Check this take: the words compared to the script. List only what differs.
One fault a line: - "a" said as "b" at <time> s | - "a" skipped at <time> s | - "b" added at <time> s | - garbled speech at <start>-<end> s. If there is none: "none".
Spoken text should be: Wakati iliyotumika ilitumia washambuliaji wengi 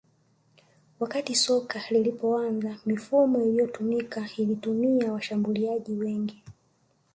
- "soka lilipoanza mifumo" added at 1.4 s